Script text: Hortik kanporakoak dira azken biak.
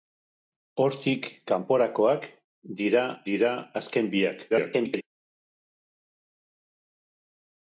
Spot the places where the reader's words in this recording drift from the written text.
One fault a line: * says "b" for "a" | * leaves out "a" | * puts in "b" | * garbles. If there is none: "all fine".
* puts in "dira"
* garbles